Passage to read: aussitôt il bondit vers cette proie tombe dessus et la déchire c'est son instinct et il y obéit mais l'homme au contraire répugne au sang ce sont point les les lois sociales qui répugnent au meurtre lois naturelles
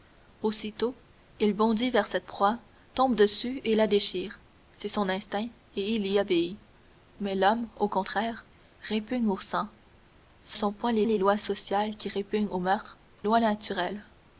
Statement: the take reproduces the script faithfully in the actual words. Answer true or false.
true